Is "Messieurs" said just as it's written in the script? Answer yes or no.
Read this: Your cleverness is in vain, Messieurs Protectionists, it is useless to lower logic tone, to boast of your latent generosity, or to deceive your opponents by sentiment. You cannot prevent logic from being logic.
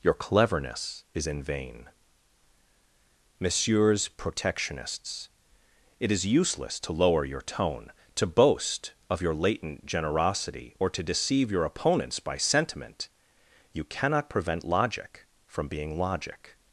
yes